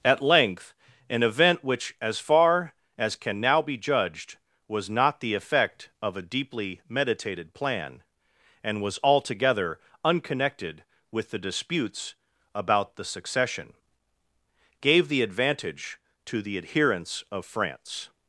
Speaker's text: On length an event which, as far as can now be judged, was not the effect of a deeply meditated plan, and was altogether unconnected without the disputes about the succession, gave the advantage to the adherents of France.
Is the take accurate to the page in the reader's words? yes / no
no